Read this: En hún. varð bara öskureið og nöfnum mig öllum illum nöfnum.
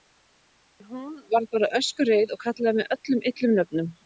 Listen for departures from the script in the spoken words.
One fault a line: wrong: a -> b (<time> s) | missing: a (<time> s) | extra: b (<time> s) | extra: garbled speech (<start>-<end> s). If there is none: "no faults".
wrong: nöfnum -> kallaði (2.5 s)